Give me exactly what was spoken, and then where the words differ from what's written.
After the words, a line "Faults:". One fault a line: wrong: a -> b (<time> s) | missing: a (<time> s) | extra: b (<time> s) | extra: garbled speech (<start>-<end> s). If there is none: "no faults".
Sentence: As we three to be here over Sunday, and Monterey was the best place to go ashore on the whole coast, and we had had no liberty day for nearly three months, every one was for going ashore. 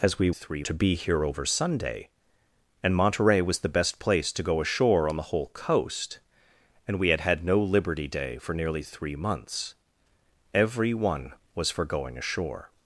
As we three to be here over Sunday, and Monterey was the best place to go ashore on the whole coast, and we had had no liberty day for nearly three months, every one was for going ashore.
Faults:
no faults